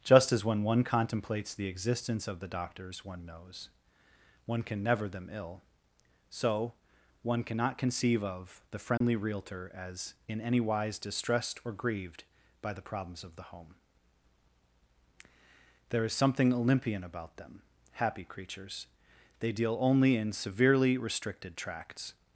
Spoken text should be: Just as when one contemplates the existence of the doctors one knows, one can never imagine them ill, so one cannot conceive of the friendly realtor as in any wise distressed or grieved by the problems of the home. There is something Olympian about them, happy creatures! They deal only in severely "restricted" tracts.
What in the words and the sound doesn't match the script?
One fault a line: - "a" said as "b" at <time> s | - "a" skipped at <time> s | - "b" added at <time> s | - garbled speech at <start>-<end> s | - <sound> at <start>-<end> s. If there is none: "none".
- "imagine" skipped at 5.1 s
- dropout at 9.0-9.0 s